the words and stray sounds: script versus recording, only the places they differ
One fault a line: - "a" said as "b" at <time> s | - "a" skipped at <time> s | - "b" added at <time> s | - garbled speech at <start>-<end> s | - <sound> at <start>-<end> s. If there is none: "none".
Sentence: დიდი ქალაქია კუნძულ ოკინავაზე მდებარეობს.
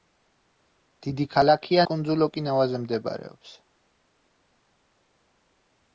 none